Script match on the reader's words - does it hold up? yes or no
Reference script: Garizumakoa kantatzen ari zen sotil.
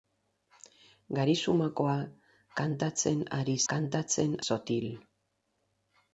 no